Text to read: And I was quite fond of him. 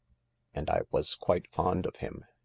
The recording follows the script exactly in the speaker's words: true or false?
true